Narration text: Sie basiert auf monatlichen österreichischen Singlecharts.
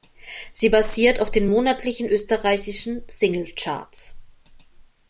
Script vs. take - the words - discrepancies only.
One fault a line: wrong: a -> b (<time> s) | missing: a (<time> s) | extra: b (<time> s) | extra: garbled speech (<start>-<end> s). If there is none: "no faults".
extra: den (1.3 s)